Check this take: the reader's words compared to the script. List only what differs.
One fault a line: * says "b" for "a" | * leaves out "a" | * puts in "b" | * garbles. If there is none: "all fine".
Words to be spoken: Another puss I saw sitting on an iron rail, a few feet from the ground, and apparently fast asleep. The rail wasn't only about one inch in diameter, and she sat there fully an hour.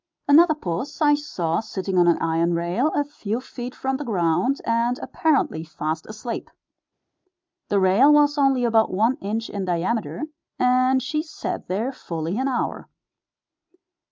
* says "was" for "wasn't"